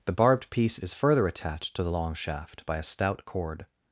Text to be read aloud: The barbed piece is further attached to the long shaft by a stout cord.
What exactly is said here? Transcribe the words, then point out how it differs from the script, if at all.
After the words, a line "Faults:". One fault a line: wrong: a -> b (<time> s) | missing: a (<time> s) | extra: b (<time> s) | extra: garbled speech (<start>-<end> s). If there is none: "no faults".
The barbed piece is further attached to the long shaft by a stout cord.
Faults:
no faults